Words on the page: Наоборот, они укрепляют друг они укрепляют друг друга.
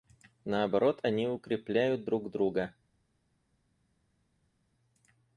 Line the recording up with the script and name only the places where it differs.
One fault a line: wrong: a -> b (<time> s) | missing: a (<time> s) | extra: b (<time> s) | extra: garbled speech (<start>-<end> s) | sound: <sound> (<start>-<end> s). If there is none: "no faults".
missing: они укрепляют друг (2.3 s)